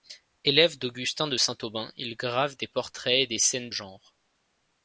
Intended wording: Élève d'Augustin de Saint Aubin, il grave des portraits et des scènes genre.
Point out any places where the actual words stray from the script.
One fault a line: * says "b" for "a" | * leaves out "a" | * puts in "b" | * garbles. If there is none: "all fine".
all fine